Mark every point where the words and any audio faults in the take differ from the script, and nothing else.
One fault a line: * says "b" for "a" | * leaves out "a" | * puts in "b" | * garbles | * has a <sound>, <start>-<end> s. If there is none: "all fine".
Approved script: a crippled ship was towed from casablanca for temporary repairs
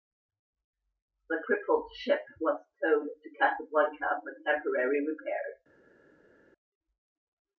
* says "the" for "a"
* says "to" for "from"